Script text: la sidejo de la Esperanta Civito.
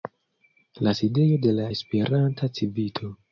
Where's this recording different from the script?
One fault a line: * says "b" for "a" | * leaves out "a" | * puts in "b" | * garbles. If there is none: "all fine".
all fine